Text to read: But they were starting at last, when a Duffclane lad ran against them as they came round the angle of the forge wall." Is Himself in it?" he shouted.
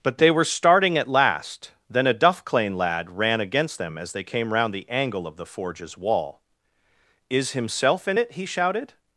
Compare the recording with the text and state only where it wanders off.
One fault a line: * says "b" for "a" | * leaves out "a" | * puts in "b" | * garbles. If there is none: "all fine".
* says "then" for "when"
* says "forges" for "forge"